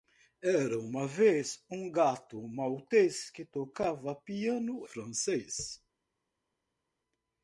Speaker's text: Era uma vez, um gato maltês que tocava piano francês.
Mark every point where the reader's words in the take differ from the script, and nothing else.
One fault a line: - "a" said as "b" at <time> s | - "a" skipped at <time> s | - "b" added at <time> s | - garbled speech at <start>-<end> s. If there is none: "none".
none